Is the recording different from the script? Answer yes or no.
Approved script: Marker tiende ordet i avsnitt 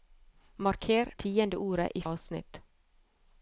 no